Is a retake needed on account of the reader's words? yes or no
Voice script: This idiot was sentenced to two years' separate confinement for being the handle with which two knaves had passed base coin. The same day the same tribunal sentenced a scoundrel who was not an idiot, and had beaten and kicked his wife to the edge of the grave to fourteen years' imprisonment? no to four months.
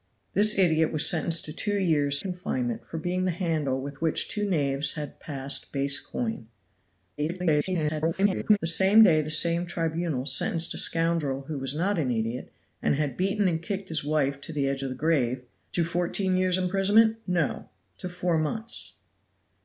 yes